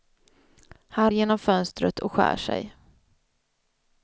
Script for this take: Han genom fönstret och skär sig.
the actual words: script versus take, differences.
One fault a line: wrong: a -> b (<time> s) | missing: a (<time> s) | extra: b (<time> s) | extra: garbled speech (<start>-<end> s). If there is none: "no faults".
no faults